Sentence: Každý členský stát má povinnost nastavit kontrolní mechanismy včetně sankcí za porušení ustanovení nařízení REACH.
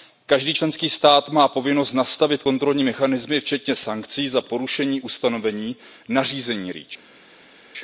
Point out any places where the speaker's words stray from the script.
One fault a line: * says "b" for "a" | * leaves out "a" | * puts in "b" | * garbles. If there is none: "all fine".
all fine